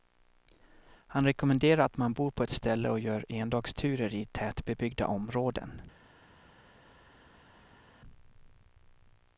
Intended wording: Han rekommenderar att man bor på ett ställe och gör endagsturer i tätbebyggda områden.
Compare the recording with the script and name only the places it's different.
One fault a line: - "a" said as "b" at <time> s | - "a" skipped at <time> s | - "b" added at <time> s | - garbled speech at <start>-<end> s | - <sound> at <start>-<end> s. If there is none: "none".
none